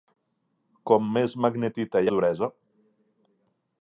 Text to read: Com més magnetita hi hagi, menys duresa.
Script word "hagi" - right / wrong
wrong